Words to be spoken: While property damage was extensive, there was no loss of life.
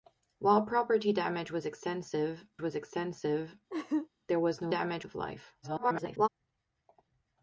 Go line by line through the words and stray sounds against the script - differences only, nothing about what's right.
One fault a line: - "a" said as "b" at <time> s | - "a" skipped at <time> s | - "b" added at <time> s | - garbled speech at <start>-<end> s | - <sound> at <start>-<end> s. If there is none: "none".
- "was extensive" added at 2.6 s
- laugh at 3.7-4.1 s
- "loss" said as "damage" at 4.7 s
- garbled speech at 5.6-6.3 s